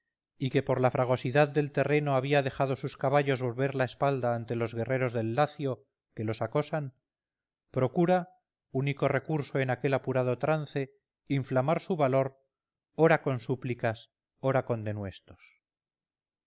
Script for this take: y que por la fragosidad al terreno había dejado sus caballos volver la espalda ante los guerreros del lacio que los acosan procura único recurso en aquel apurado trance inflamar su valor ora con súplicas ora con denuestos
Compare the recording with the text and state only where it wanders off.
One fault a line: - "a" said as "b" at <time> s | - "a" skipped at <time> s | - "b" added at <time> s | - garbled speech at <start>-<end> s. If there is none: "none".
- "al" said as "del" at 1.5 s